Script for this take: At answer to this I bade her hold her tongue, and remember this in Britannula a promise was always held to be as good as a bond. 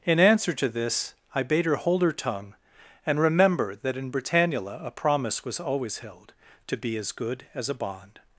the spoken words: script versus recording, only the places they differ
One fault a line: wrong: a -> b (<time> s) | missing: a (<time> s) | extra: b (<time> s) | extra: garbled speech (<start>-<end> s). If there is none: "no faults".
wrong: At -> In (0.0 s)
wrong: this -> that (3.8 s)